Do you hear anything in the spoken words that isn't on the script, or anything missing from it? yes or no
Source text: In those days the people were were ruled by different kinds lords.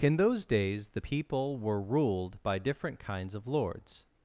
yes